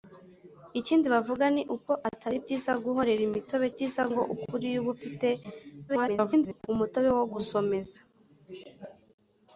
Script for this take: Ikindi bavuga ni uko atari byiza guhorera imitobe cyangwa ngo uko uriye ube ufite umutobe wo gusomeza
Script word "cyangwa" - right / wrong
wrong